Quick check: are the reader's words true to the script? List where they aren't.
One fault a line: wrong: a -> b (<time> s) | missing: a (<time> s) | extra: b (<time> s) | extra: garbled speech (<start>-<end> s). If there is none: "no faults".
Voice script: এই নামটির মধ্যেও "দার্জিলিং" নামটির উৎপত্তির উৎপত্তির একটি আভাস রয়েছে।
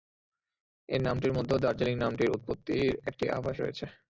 missing: উৎপত্তির (2.8 s)